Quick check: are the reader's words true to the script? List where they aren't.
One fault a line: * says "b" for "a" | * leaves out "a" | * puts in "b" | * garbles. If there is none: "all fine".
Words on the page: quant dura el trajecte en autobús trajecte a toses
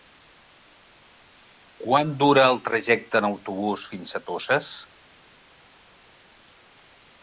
* says "fins" for "trajecte"